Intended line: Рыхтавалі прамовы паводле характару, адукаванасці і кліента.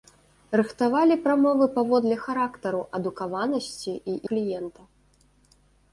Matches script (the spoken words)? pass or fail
pass